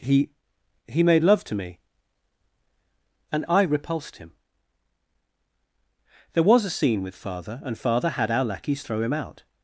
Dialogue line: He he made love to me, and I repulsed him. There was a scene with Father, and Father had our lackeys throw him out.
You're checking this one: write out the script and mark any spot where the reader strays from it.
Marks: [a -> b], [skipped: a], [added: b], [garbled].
He he made love to me, and I repulsed him. There was a scene with Father, and Father had our lackeys throw him out.